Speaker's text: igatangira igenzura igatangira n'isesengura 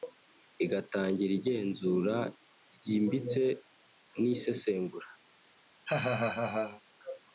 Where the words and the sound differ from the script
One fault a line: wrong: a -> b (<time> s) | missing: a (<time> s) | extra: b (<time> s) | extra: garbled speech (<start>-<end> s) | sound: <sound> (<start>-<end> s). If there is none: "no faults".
wrong: igatangira -> ryimbitse (2.7 s)
sound: laugh (5.8-6.8 s)